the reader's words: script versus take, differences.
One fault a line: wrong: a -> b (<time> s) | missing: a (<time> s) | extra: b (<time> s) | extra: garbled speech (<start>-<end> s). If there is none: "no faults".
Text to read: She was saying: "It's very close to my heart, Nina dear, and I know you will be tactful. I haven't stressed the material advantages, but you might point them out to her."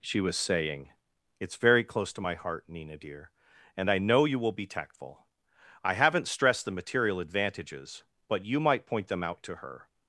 no faults